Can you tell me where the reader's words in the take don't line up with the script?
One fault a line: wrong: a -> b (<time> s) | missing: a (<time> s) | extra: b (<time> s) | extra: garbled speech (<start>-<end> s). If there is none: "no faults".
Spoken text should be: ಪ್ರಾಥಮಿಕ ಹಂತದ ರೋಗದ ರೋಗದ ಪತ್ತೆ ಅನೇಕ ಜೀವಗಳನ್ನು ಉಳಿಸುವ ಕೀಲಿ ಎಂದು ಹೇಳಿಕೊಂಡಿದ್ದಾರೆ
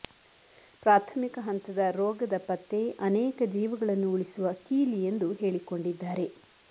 missing: ರೋಗದ (2.4 s)